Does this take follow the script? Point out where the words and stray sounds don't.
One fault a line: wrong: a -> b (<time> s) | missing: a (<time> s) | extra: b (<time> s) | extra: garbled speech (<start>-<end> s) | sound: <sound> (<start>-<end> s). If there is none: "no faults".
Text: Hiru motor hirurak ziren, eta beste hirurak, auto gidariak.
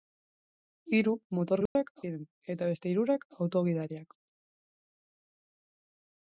sound: dropout (1.7-1.8 s)